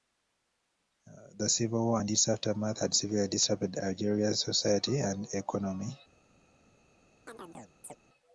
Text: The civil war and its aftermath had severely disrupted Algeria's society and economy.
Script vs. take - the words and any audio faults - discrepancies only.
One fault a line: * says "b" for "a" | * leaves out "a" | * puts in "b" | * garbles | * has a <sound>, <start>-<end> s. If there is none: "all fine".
* has a chirp, 7.3-8.0 s